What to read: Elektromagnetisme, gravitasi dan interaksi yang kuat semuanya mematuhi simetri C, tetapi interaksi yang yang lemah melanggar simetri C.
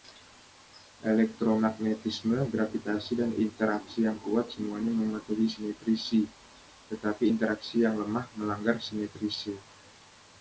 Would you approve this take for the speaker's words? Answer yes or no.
no